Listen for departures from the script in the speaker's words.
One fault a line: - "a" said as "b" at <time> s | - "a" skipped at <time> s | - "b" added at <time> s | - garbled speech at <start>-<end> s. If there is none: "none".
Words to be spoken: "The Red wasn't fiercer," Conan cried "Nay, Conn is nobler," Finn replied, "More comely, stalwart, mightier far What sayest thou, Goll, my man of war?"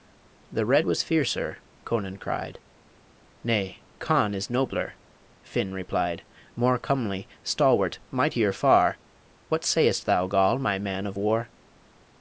- "wasn't" said as "was" at 0.8 s